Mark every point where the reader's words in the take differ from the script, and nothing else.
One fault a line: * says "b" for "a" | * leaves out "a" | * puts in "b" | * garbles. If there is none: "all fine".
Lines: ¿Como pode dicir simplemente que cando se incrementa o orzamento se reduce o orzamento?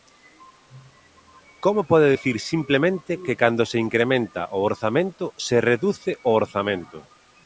all fine